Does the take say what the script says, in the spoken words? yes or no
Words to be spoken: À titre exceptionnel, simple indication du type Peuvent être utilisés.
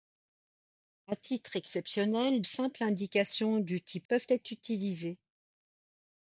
yes